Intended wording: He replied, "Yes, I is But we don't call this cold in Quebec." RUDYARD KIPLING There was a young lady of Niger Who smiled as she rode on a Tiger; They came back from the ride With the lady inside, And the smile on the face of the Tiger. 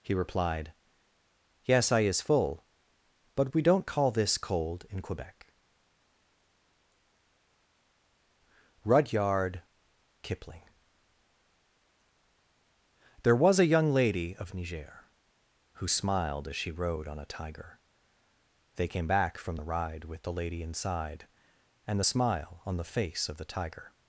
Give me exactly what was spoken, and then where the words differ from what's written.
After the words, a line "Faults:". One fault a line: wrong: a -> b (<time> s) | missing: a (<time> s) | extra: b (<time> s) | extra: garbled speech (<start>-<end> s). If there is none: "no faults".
He replied, "Yes, I is full But we don't call this cold in Quebec." RUDYARD KIPLING There was a young lady of Niger Who smiled as she rode on a Tiger; They came back from the ride With the lady inside, And the smile on the face of the Tiger.
Faults:
extra: full (2.2 s)